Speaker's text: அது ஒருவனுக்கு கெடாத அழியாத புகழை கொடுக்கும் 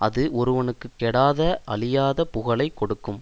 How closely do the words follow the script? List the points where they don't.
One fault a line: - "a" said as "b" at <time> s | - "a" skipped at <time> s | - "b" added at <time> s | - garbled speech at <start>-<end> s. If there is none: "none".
none